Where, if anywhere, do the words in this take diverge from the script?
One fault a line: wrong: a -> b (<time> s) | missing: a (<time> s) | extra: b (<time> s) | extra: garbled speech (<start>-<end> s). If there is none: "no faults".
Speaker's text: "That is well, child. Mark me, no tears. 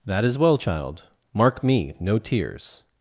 no faults